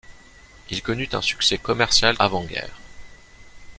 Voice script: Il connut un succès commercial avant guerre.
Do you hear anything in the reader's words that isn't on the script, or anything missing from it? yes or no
no